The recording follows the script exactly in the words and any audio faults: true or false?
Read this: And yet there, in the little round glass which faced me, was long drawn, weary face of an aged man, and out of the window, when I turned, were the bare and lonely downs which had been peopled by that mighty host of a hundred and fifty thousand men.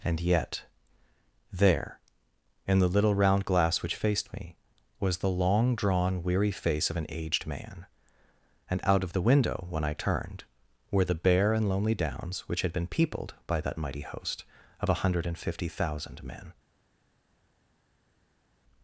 false